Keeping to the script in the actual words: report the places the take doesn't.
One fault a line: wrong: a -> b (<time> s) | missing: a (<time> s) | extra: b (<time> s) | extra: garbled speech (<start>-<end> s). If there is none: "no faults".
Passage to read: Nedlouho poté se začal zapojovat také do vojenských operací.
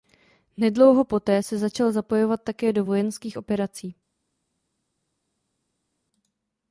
no faults